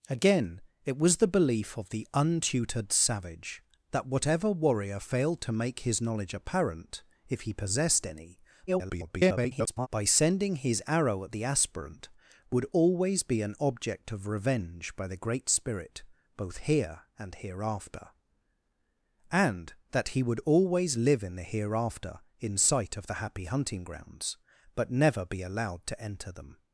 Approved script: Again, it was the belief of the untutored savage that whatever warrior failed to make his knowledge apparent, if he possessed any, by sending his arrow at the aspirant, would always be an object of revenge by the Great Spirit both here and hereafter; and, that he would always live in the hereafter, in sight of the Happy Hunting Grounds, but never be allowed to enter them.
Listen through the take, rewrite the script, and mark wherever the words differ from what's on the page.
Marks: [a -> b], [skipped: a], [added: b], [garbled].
Again, it was the belief of the untutored savage that whatever warrior failed to make his knowledge apparent, if he possessed any, [garbled] by sending his arrow at the aspirant, would always be an object of revenge by the Great Spirit both here and hereafter; and, that he would always live in the hereafter, in sight of the Happy Hunting Grounds, but never be allowed to enter them.